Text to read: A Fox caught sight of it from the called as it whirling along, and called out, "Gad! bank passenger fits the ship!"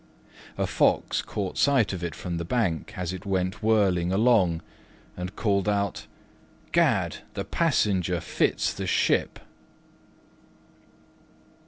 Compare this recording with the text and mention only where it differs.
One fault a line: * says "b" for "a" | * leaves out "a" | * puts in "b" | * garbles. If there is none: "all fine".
* says "bank" for "called"
* puts in "went"
* says "the" for "bank"